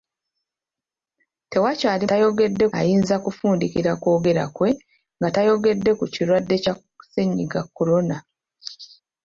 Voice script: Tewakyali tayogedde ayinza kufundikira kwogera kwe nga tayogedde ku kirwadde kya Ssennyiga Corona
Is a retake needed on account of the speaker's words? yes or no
no